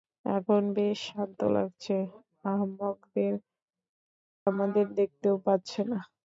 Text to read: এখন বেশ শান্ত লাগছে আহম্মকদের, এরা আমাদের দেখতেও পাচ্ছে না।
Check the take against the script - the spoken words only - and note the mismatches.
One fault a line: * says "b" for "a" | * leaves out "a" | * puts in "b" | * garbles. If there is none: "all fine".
* leaves out "এরা"